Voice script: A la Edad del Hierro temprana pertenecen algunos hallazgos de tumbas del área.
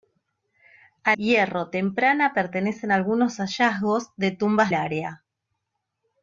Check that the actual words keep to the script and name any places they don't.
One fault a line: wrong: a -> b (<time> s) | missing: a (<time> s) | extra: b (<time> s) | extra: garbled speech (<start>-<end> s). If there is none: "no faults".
missing: la Edad del (1.1 s)
missing: del (4.7 s)